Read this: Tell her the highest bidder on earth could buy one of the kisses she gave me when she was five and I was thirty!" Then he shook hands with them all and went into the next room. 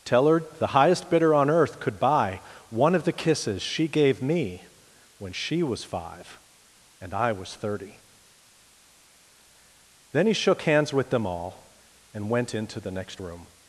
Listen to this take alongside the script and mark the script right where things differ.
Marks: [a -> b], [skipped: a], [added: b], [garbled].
Tell her the highest bidder on earth could buy one of the kisses she gave me when she was five and I was thirty!" Then he shook hands with them all and went into the next room.